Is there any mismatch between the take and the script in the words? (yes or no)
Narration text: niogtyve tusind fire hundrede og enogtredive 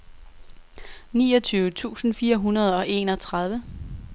no